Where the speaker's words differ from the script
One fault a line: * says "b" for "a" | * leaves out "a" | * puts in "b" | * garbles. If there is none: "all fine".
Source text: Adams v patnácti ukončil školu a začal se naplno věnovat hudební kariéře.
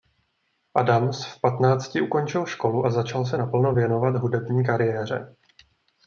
all fine